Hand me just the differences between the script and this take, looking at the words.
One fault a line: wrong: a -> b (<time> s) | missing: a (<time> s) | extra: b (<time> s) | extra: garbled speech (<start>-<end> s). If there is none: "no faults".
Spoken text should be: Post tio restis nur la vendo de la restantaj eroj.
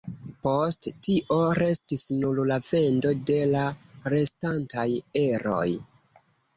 no faults